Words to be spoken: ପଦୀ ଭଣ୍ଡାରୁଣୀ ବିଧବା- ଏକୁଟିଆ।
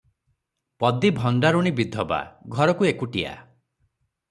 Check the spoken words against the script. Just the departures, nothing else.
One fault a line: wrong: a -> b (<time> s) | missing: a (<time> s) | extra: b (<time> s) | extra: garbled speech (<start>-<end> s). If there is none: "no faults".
extra: ଘରକୁ (2.5 s)